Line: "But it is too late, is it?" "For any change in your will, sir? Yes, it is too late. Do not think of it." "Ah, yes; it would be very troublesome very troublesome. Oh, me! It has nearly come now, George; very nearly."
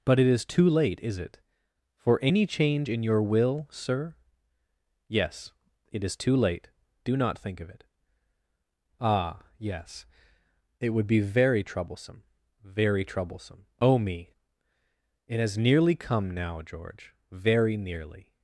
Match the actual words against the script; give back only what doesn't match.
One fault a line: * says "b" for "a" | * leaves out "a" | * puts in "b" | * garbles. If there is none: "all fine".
all fine